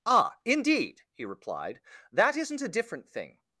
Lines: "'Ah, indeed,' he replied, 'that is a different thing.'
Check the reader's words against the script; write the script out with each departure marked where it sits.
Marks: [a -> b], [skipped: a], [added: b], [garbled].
"'Ah, indeed,' he replied, 'that [is -> isn't] a different thing.'